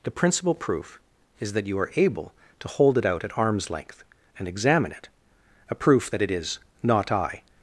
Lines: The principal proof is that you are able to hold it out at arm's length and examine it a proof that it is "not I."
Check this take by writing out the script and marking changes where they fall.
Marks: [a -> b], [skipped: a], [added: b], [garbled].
The principal proof is that you are able to hold it out at arm's length and examine it a proof that it is "not I."